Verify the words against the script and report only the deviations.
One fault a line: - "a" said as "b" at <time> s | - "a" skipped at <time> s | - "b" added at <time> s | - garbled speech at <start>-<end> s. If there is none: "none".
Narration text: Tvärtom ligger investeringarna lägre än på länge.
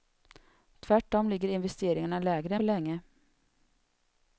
- "än" skipped at 2.5 s